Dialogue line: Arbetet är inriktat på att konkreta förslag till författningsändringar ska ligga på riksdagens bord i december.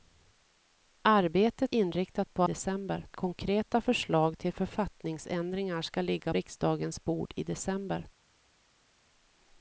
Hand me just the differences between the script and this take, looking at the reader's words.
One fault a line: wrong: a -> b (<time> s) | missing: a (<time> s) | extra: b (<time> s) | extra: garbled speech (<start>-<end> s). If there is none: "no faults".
missing: är (1.8 s)
wrong: att -> december (2.4 s)
missing: på (6.3 s)